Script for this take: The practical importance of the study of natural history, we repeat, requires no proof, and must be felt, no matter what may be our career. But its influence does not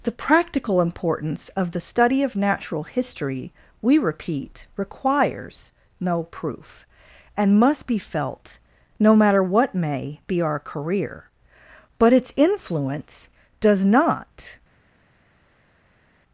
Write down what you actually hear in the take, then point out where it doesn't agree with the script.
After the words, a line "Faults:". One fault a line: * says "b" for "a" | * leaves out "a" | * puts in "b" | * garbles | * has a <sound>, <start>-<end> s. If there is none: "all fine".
The practical importance of the study of natural history, we repeat, requires no proof, and must be felt, no matter what may be our career. But its influence does not
Faults:
all fine